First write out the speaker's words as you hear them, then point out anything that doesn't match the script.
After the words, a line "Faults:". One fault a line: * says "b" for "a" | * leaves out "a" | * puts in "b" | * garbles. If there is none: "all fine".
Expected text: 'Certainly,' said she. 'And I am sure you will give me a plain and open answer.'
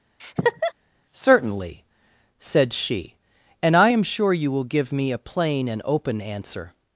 'Certainly,' said she. 'And I am sure you will give me a plain and open answer.'
Faults:
all fine